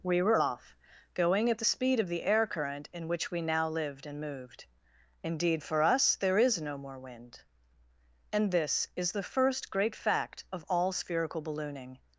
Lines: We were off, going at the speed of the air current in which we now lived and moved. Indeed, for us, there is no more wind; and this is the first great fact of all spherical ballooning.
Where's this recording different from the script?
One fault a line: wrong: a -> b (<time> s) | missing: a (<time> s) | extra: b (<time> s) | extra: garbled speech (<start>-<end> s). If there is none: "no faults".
no faults